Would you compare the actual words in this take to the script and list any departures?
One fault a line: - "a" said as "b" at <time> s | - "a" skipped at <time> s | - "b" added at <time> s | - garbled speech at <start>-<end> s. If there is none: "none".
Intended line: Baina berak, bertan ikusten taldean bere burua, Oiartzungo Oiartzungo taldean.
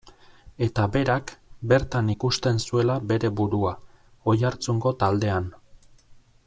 - "Baina" said as "Eta" at 0.7 s
- "taldean" said as "zuela" at 2.7 s
- "Oiartzungo" skipped at 4.9 s